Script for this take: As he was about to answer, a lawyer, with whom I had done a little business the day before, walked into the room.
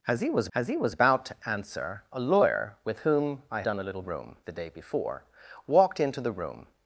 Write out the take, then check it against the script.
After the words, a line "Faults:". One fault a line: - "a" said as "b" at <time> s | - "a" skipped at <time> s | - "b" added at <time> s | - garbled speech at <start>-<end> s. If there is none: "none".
As he was as he was about to answer, a lawyer, with whom I done a little room the day before, walked into the room.
Faults:
- "as he was" added at 0.5 s
- "had" skipped at 3.6 s
- "business" said as "room" at 4.0 s